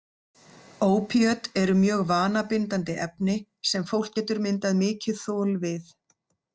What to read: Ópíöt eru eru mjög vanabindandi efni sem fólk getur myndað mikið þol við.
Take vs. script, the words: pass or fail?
fail